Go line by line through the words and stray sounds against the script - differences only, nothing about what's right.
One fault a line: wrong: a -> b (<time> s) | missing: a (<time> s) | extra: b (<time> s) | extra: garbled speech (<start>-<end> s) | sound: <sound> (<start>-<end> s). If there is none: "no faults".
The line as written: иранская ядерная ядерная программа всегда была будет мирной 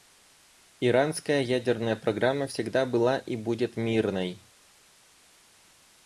missing: ядерная (2.0 s)
extra: и (3.2 s)